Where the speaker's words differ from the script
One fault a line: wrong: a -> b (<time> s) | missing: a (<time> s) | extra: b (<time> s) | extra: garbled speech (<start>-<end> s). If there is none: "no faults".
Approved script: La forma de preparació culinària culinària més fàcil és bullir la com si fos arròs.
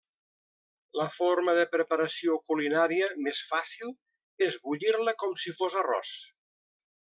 missing: culinària (3.1 s)